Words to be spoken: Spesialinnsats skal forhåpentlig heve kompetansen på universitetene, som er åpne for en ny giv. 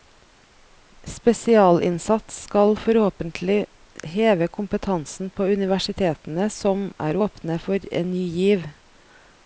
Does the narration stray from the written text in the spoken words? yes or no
no